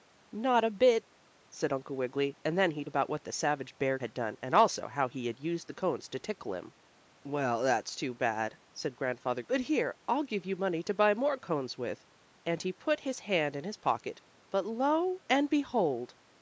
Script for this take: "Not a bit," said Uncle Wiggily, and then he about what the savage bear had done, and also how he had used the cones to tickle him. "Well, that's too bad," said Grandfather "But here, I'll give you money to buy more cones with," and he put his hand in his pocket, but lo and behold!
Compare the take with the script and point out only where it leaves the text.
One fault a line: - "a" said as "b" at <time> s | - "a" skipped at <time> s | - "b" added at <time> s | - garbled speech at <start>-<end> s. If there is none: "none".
none